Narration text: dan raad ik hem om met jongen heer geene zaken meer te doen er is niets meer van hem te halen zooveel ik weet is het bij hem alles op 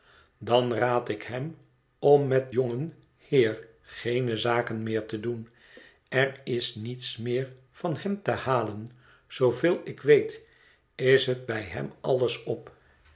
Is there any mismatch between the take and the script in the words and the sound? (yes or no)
no